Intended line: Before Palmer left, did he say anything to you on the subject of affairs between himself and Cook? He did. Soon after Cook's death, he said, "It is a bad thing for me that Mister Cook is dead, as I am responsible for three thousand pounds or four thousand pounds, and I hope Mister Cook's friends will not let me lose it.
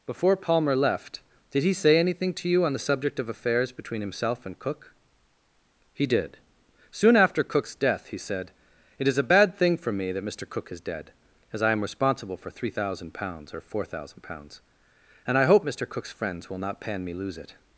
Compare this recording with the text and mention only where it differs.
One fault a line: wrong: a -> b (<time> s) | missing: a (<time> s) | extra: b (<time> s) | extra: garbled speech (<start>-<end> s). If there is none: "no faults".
wrong: let -> pan (16.8 s)